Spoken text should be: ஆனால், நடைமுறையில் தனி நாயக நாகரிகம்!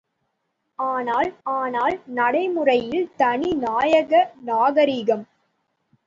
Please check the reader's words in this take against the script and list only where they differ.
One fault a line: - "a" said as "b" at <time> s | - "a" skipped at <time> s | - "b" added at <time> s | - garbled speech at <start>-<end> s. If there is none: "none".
- "ஆனால்" added at 1.5 s